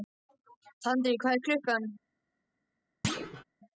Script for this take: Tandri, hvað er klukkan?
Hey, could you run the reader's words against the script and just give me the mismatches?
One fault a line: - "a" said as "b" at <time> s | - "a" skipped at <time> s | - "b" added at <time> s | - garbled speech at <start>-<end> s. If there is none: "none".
none